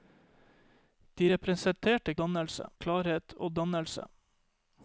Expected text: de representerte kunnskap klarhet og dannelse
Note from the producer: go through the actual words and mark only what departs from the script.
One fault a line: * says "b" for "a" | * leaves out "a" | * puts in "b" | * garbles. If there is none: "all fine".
* says "dannelse" for "kunnskap"